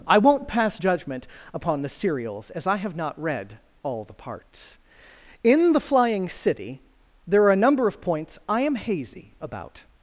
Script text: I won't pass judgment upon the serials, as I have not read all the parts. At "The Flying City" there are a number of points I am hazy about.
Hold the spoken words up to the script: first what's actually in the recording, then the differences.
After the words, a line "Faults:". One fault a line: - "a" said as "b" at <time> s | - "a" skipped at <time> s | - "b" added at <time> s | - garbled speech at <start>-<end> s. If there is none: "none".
I won't pass judgment upon the serials, as I have not read all the parts. In "The Flying City" there are a number of points I am hazy about.
Faults:
- "At" said as "In" at 5.4 s